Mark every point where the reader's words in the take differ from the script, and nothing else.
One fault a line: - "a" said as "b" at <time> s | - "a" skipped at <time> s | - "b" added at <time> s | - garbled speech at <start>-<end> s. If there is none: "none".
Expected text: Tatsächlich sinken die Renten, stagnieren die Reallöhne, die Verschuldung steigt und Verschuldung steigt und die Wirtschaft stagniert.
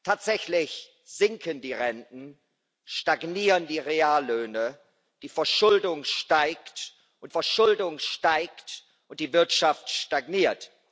none